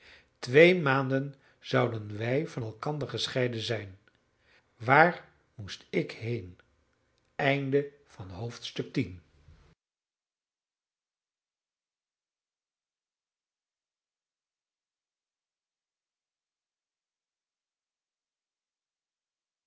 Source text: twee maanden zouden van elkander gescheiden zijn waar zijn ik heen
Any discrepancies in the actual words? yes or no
yes